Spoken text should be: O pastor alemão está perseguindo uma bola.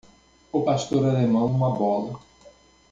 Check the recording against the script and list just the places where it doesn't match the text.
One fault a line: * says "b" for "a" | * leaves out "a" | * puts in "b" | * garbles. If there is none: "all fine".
* leaves out "está perseguindo"